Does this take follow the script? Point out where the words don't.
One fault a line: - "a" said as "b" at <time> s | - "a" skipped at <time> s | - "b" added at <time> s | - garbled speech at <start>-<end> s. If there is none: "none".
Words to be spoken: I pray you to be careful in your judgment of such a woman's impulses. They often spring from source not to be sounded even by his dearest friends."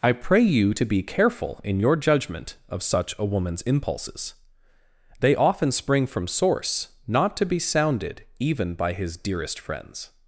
none